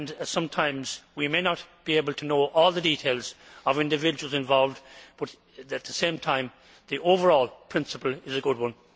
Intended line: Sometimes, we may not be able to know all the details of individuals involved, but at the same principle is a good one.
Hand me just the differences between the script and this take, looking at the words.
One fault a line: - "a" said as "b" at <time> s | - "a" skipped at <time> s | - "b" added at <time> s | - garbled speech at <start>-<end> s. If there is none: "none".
- "time the overall" added at 6.2 s